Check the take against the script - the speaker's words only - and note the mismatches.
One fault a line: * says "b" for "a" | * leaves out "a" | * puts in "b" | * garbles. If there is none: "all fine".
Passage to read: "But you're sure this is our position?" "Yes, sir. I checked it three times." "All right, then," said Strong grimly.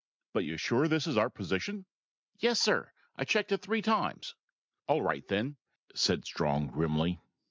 all fine